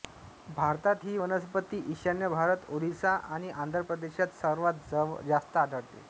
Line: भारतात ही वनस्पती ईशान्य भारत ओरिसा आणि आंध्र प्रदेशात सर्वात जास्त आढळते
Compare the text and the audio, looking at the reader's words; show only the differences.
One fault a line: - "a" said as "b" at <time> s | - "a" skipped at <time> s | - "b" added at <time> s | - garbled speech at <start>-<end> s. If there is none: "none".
none